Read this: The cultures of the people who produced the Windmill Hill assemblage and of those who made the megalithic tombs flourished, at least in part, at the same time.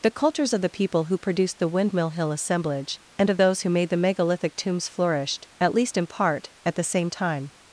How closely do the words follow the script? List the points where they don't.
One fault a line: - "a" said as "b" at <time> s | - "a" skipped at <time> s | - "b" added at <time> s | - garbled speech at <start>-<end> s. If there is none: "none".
none